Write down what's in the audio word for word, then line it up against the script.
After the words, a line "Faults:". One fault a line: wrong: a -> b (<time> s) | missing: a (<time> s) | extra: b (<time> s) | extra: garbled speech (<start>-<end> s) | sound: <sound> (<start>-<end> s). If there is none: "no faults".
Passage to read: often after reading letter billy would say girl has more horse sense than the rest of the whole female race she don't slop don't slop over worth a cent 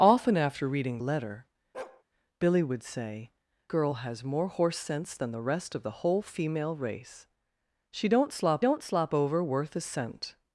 often after reading letter billy would say girl has more horse sense than the rest of the whole female race she don't slop don't slop over worth a cent
Faults:
sound: bark (1.7-2.0 s)